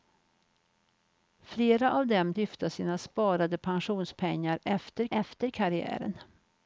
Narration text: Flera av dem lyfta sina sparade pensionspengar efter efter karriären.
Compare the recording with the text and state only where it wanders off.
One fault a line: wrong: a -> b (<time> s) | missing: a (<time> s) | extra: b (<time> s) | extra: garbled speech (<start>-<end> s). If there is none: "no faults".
no faults